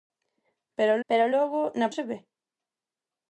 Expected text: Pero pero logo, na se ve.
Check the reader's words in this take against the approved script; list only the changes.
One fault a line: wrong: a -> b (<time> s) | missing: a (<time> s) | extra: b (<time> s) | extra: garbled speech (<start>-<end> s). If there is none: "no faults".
no faults